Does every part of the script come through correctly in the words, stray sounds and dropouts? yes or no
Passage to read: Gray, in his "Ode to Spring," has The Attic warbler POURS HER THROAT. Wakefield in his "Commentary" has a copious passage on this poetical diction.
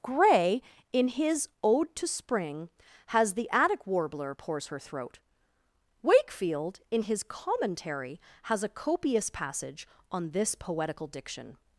yes